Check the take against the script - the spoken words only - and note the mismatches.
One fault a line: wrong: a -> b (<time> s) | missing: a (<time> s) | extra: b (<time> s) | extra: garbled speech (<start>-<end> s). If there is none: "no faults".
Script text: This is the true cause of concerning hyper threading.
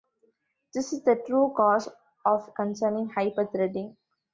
no faults